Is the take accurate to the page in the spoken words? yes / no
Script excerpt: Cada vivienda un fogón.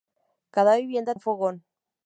yes